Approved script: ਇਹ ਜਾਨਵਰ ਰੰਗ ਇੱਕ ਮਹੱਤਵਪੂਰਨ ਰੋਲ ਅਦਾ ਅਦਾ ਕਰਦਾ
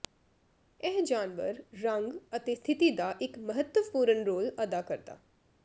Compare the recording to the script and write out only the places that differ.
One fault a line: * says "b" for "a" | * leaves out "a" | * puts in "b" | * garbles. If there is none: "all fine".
* puts in "ਅਤੇ ਸਥਿਤੀ ਦਾ"
* leaves out "ਅਦਾ"